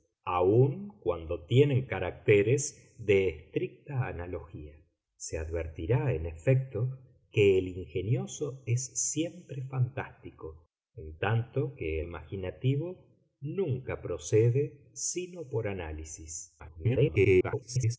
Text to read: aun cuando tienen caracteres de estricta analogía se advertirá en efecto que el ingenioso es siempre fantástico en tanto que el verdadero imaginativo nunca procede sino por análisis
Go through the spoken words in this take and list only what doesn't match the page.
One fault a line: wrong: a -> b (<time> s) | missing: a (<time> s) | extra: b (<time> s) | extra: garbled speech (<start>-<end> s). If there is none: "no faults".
missing: el verdadero (12.0 s)
extra: garbled speech (16.6-18.0 s)